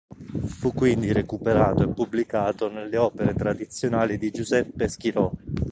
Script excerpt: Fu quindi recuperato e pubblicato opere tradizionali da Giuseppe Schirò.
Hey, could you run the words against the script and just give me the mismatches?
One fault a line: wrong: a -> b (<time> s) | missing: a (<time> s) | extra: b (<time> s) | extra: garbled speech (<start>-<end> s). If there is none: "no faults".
extra: nelle (2.7 s)
wrong: da -> di (4.2 s)